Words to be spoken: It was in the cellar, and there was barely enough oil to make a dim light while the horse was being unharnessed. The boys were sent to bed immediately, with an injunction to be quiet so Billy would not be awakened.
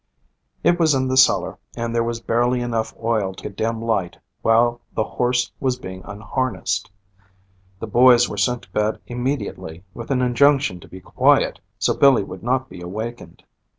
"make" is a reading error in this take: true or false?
true